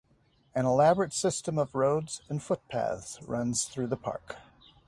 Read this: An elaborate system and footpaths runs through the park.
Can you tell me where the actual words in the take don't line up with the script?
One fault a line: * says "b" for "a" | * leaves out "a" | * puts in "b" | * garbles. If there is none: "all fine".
* puts in "of roads"